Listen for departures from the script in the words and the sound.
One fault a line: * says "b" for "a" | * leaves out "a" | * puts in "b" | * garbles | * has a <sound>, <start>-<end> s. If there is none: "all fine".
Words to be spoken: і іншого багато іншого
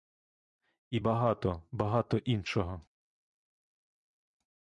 * says "багато" for "іншого"